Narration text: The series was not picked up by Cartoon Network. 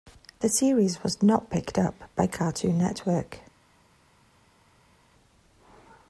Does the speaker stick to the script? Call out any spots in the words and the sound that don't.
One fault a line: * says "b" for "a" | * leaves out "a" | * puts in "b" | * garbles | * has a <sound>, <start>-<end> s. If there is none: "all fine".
all fine